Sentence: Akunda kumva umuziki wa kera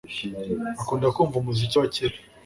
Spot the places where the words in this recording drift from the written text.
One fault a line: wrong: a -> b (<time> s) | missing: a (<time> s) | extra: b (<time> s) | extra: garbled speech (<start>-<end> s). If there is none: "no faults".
no faults